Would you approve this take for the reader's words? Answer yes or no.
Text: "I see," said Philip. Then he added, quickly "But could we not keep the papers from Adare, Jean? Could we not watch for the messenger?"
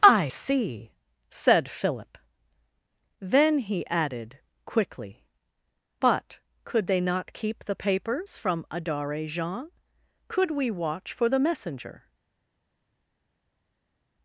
no